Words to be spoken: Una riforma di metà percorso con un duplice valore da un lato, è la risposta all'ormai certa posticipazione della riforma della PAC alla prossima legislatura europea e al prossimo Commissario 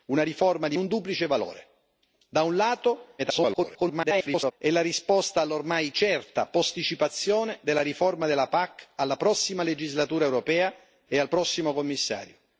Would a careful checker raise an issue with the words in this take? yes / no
yes